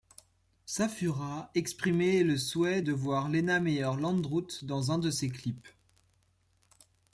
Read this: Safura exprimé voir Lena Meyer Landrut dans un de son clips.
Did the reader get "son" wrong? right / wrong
wrong